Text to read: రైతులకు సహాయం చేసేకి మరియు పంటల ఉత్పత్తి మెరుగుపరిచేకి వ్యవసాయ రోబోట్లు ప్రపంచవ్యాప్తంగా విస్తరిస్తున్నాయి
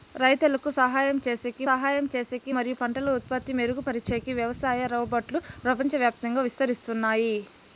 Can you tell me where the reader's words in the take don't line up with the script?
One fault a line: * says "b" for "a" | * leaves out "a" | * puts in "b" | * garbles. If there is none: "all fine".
* puts in "సహాయం చేసేకి"